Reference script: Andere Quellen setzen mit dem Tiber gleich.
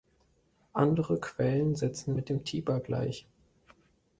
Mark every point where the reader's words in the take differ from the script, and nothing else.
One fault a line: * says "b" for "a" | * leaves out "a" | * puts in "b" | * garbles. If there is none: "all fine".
all fine